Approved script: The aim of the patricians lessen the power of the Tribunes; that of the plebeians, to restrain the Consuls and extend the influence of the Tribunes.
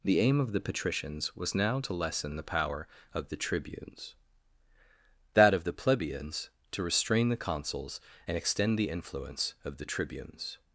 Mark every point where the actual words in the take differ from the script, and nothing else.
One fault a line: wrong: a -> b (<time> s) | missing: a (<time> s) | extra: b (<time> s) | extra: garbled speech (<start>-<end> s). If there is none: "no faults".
extra: was now to (1.4 s)